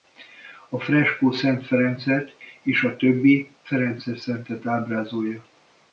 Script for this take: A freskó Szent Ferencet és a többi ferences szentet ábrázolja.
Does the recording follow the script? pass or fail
pass